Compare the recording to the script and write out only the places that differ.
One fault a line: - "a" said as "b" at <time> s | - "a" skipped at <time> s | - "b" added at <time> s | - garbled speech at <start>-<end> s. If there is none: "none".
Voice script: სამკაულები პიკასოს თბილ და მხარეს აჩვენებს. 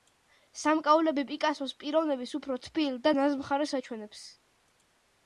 - "პიროვნების უფრო" added at 1.8 s
- "ნაზ" added at 3.2 s